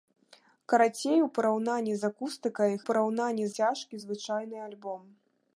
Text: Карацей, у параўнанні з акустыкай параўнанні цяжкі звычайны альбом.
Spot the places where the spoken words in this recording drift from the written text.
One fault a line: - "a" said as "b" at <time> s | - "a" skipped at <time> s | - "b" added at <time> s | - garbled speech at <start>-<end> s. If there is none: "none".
none